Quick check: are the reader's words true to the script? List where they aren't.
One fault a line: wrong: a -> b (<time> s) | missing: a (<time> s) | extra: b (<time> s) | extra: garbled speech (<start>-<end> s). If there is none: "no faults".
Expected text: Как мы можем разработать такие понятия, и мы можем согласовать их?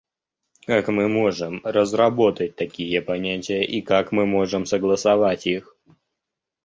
extra: как (3.8 s)